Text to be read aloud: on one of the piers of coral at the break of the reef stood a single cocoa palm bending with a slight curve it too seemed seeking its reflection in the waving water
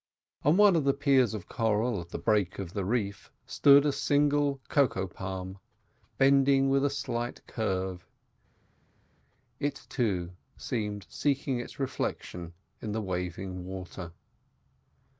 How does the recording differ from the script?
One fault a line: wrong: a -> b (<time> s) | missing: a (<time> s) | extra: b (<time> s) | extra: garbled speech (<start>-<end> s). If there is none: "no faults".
no faults